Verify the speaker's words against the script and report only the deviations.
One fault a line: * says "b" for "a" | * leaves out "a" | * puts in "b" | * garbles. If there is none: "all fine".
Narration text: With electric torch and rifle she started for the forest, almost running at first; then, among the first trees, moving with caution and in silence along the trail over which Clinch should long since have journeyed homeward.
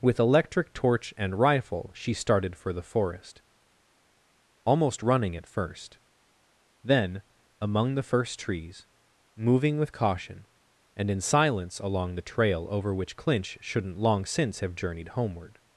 * says "shouldn't" for "should"